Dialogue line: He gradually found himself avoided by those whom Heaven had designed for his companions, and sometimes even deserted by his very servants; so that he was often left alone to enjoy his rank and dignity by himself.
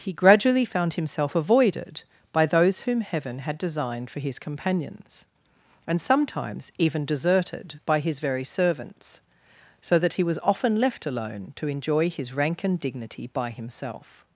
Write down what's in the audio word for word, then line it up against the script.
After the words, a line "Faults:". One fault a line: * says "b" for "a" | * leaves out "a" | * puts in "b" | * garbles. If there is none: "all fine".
He gradually found himself avoided by those whom Heaven had designed for his companions, and sometimes even deserted by his very servants; so that he was often left alone to enjoy his rank and dignity by himself.
Faults:
all fine